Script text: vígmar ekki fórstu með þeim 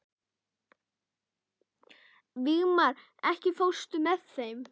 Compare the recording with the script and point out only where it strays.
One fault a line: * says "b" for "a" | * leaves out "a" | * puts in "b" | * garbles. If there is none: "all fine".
all fine